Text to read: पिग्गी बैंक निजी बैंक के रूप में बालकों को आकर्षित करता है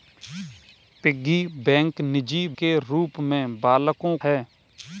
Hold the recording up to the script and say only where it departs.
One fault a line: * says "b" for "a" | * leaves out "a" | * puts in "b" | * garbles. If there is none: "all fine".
* leaves out "बैंक"
* leaves out "को आकर्षित करता"